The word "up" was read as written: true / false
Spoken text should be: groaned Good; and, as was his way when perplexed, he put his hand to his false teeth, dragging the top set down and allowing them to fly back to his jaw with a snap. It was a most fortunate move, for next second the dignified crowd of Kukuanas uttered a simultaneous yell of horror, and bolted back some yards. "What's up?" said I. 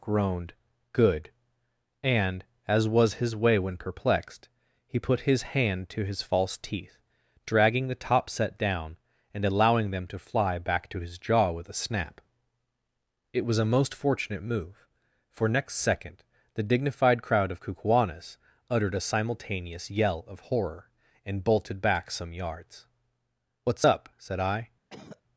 true